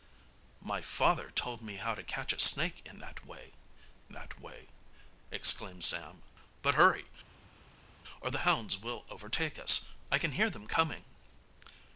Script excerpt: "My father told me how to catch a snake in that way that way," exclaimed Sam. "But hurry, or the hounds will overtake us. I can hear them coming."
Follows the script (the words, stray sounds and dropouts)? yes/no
yes